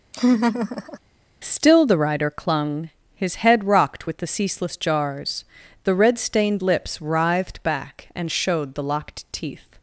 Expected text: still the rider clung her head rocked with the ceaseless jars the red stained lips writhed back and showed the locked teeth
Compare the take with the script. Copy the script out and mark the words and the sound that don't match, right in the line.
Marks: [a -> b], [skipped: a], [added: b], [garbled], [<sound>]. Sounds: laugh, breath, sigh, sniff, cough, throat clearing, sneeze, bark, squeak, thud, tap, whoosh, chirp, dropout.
[laugh] still the rider clung [her -> his] head rocked with the ceaseless jars the red stained lips writhed back and showed the locked teeth